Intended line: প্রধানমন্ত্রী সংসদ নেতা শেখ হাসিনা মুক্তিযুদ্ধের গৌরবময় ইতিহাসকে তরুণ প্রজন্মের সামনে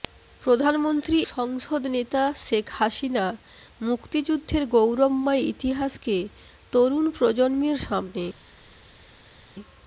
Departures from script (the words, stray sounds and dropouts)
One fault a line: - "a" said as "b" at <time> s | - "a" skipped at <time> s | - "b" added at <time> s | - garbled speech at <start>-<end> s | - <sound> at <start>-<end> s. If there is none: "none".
none